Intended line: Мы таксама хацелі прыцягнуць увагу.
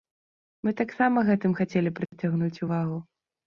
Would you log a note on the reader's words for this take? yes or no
yes